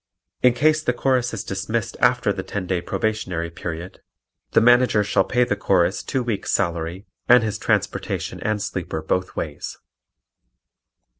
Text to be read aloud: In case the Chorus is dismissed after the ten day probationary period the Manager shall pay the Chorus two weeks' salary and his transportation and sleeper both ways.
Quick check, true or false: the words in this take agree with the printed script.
true